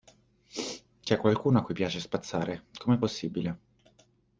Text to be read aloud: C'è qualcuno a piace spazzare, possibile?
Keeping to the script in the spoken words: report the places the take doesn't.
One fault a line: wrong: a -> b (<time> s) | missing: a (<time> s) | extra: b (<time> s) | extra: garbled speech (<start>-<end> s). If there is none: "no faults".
extra: cui (1.6 s)
extra: com'è (2.8 s)